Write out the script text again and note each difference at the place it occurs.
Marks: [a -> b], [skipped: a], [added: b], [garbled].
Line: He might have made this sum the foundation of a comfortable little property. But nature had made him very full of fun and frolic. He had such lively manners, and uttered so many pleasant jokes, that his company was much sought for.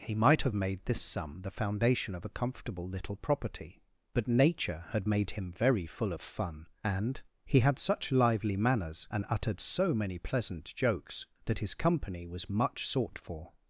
He might have made this sum the foundation of a comfortable little property. But nature had made him very full of fun and [skipped: frolic.] He had such lively manners, and uttered so many pleasant jokes, that his company was much sought for.